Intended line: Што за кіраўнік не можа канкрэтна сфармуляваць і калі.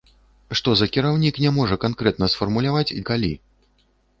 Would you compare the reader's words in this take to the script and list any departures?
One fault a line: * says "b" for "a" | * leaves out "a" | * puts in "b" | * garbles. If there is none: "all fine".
all fine